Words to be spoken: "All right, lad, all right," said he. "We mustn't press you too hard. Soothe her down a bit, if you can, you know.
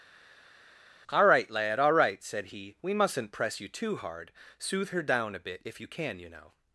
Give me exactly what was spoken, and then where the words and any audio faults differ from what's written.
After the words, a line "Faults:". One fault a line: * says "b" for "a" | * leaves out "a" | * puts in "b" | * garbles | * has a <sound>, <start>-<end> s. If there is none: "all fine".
"All right, lad, all right," said he. "We mustn't press you too hard. Soothe her down a bit, if you can, you know.
Faults:
all fine